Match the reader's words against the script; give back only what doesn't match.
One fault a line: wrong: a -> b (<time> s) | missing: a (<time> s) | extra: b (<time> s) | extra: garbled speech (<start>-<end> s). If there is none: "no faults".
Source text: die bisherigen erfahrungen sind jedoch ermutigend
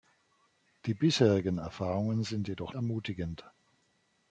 no faults